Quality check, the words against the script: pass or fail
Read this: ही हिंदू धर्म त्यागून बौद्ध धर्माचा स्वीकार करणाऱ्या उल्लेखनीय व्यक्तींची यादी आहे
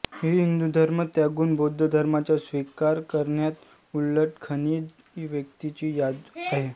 pass